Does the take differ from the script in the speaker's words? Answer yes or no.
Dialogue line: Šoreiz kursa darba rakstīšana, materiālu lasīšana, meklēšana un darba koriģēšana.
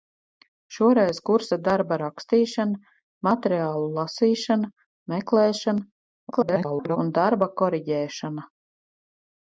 yes